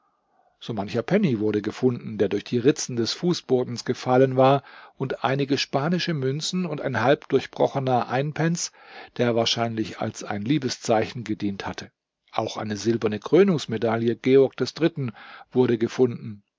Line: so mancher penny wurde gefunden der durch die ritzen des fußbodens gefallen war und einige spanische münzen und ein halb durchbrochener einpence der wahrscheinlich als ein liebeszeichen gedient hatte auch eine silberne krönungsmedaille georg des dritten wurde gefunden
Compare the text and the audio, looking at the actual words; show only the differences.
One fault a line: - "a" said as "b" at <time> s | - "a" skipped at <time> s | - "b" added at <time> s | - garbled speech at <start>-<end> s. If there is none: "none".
none